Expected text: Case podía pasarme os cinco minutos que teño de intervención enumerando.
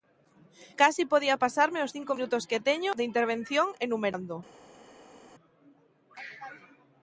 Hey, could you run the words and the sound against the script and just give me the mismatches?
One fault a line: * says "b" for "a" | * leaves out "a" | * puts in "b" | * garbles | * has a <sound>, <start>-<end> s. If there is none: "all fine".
all fine